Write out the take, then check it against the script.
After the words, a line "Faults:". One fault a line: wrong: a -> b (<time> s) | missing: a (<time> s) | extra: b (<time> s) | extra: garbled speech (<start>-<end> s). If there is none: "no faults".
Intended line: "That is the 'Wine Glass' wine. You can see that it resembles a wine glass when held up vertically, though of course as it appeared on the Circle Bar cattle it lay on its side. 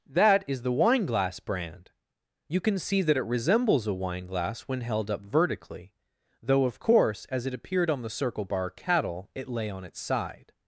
"That is the 'Wine Glass' brand. You can see that it resembles a wine glass when held up vertically, though of course as it appeared on the Circle Bar cattle it lay on its side.
Faults:
wrong: wine -> brand (1.4 s)